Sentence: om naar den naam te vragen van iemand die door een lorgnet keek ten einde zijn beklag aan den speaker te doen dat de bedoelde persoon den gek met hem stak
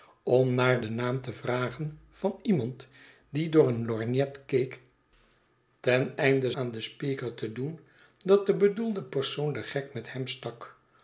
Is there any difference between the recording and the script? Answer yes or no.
yes